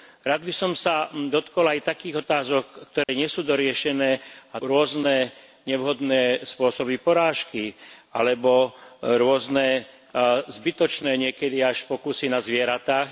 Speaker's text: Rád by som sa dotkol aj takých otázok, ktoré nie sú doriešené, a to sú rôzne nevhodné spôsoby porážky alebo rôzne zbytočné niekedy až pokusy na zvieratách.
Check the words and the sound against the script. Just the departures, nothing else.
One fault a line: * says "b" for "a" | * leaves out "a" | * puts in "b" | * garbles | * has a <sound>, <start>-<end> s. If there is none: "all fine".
* has a dropout, 3.0-3.1 s
* leaves out "to sú"